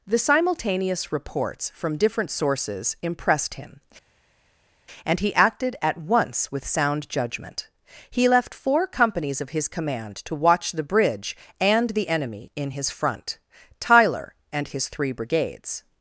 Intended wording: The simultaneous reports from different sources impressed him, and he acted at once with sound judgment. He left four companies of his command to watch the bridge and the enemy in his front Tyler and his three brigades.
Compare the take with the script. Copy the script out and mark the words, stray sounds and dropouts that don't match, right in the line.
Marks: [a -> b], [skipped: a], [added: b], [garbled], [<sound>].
The simultaneous reports from different sources impressed him, and he acted at once with sound judgment. He left four companies of his command to watch the bridge and the enemy in his front Tyler and his three brigades.